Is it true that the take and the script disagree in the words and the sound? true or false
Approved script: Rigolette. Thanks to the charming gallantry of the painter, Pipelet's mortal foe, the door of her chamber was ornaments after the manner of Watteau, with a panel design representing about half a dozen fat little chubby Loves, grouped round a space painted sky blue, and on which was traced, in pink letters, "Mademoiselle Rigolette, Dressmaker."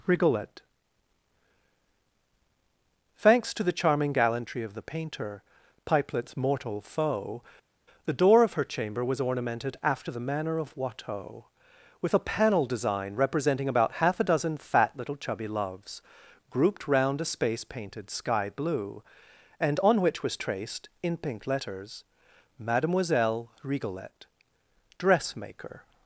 true